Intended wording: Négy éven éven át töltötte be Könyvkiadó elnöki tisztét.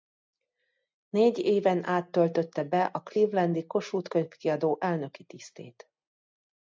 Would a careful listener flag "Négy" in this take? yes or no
no